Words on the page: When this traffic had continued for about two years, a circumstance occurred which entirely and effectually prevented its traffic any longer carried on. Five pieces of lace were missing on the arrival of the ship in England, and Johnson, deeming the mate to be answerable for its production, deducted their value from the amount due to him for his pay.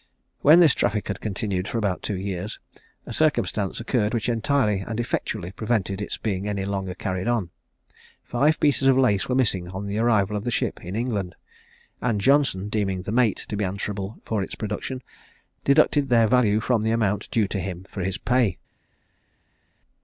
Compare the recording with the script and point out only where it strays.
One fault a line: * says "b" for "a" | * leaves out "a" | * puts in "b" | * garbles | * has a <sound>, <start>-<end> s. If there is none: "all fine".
* says "being" for "traffic"